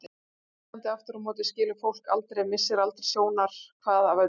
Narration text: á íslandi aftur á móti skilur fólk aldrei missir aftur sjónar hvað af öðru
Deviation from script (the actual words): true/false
true